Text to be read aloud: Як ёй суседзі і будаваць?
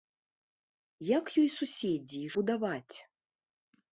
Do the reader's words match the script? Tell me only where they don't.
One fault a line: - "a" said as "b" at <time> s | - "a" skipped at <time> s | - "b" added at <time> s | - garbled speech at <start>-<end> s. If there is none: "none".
none